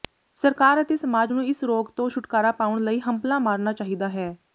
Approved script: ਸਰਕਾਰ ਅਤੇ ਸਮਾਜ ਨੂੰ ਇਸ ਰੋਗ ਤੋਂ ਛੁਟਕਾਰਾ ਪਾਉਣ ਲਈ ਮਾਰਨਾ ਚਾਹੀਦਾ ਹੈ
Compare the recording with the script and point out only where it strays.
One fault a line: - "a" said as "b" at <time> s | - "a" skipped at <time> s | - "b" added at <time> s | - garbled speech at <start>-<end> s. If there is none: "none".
- "ਹੰਭਲਾ" added at 3.0 s